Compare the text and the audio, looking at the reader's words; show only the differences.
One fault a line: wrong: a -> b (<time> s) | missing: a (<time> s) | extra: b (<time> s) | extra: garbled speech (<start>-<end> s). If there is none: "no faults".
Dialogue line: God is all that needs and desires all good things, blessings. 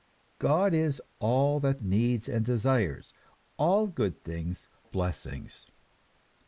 no faults